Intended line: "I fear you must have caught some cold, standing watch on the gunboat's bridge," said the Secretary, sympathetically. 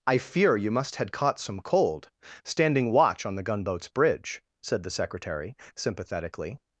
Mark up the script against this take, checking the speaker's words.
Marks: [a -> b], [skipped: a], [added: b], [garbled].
"I fear you must [have -> had] caught some cold, standing watch on the gunboat's bridge," said the Secretary, sympathetically.